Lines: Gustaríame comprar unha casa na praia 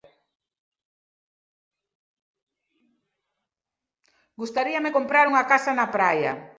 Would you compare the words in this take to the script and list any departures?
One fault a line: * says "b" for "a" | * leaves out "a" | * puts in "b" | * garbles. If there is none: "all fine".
all fine